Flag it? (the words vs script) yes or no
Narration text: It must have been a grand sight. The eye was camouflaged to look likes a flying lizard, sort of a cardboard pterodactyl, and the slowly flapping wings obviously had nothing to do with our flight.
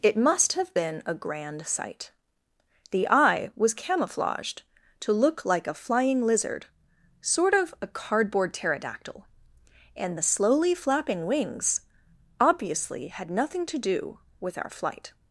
yes